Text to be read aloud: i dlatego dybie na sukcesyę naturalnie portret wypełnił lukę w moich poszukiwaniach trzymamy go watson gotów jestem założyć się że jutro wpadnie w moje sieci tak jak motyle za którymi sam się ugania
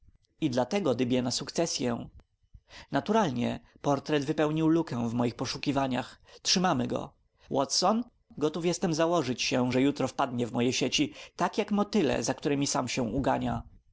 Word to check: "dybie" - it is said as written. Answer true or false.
true